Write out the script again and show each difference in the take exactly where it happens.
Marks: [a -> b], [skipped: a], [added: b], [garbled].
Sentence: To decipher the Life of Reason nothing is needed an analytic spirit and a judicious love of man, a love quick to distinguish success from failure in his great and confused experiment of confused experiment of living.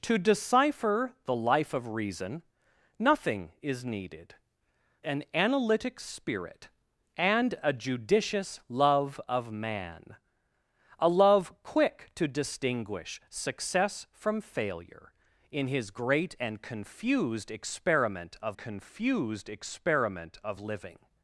To decipher the Life of Reason nothing is needed an analytic spirit and a judicious love of man, a love quick to distinguish success from failure in his great and confused experiment of confused experiment of living.